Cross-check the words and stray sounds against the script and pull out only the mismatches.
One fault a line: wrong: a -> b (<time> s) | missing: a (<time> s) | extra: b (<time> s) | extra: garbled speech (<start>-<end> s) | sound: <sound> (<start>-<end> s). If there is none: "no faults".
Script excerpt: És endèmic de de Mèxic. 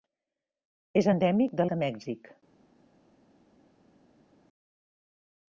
no faults